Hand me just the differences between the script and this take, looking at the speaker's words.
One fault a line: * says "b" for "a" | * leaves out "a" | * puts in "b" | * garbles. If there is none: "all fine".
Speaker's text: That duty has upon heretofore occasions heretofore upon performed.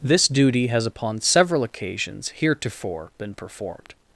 * says "This" for "That"
* says "several" for "heretofore"
* says "been" for "upon"